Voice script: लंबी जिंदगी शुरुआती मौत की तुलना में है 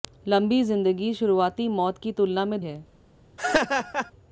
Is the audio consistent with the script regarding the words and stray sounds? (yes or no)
no